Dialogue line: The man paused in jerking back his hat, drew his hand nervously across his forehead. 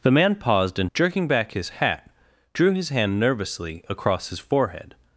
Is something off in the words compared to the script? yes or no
no